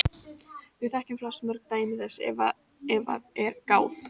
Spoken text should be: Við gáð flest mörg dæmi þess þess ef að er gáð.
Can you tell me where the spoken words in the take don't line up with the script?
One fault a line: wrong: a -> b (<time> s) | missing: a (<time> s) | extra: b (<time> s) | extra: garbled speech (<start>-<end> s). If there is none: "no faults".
wrong: gáð -> þekkjum (0.9 s)
missing: þess (2.2 s)